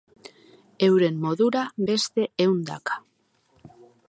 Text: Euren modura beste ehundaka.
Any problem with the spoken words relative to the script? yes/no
no